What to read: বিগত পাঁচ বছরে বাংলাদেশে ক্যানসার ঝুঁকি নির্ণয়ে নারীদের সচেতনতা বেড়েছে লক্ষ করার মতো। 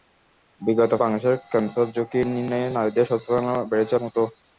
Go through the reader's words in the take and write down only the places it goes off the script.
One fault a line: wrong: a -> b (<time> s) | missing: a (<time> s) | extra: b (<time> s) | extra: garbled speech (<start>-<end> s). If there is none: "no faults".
missing: পাঁচ বছরে (0.9 s)
missing: লক্ষ করার (3.9 s)